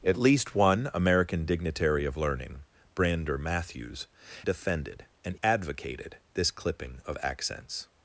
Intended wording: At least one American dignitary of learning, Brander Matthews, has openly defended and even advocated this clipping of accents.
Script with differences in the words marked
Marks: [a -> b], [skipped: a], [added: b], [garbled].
At least one American dignitary of learning, Brander Matthews, [skipped: has openly] defended and [skipped: even] advocated this clipping of accents.